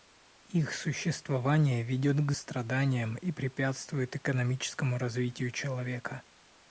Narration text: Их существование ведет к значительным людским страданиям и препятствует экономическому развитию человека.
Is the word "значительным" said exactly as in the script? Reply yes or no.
no